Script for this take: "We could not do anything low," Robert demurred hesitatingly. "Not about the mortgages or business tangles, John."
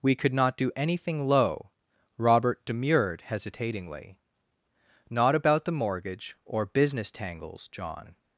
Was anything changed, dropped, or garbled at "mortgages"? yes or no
yes